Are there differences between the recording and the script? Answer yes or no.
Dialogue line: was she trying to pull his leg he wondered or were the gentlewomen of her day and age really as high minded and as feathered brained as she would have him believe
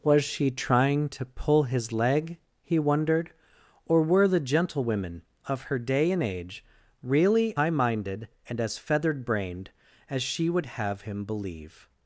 yes